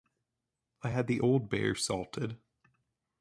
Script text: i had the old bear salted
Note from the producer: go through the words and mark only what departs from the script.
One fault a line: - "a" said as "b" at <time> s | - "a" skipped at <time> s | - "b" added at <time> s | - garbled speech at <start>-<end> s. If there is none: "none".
none